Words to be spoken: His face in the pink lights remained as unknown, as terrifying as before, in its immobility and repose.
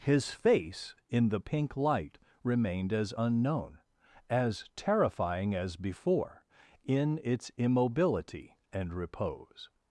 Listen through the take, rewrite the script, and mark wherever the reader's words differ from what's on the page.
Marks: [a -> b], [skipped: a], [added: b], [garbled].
His face in the pink [lights -> light] remained as unknown, as terrifying as before, in its immobility and repose.